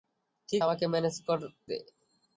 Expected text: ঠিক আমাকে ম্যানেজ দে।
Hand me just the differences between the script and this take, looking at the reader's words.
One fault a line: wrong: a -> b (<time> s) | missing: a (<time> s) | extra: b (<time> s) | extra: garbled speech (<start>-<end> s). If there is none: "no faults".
no faults